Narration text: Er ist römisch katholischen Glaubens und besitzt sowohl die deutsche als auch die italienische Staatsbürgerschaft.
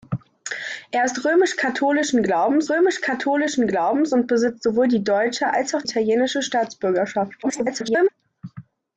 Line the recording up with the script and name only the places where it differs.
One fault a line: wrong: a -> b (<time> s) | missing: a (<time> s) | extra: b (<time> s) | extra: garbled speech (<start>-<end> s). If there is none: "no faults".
extra: römisch katholischen Glaubens (2.7 s)
missing: die (5.8 s)
extra: garbled speech (7.4-8.1 s)